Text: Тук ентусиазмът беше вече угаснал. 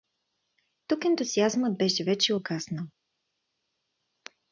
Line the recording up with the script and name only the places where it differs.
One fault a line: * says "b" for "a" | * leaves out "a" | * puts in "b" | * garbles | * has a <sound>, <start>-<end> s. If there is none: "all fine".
all fine